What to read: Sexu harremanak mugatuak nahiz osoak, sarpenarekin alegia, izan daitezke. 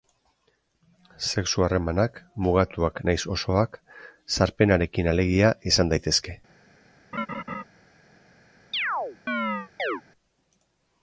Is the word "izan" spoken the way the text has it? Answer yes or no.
yes